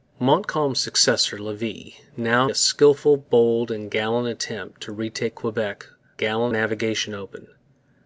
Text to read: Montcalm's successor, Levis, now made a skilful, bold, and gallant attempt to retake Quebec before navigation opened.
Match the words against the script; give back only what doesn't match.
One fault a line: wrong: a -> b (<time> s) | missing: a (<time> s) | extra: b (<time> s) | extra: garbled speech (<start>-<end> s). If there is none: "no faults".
missing: made (2.5 s)
wrong: before -> gallant (6.2 s)